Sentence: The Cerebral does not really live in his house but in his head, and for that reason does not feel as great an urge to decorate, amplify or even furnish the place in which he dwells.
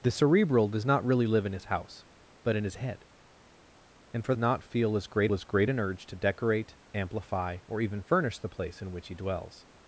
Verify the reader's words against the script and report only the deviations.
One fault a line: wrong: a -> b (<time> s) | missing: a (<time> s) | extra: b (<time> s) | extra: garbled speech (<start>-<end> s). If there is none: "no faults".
wrong: that reason does not feel -> not feel as great (4.4 s)